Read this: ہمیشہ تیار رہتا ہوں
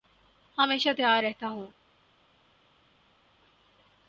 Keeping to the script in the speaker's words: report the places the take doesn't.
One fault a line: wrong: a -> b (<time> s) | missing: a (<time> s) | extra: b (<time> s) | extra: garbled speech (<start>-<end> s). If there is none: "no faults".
no faults